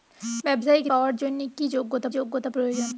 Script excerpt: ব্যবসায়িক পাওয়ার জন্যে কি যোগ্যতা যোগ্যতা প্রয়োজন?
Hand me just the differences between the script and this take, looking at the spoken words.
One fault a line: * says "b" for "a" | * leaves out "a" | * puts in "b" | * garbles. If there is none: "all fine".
all fine